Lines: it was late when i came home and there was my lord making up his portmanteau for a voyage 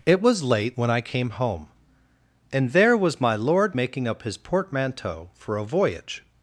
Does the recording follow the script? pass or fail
pass